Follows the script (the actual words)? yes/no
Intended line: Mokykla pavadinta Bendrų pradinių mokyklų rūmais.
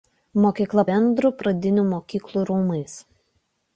no